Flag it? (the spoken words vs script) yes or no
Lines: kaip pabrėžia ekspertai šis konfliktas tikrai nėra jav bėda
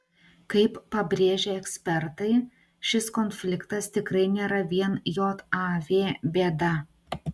yes